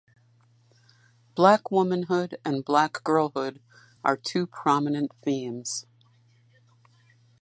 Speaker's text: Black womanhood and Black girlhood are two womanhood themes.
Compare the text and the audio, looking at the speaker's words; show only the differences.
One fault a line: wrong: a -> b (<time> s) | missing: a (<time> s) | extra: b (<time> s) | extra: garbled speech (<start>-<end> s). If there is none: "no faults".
wrong: womanhood -> prominent (4.5 s)